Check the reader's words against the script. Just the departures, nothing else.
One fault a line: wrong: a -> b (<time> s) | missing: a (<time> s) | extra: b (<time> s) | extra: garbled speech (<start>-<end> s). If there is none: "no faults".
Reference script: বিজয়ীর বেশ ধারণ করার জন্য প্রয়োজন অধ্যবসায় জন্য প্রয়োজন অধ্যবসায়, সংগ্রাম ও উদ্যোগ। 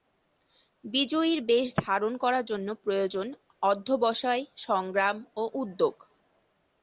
missing: জন্য প্রয়োজন অধ্যবসায় (4.4 s)